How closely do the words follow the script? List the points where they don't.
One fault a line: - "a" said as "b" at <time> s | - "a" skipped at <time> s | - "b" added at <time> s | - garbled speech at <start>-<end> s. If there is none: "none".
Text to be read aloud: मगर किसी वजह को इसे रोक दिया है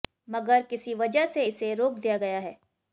- "को" said as "से" at 1.2 s
- "गया" added at 2.2 s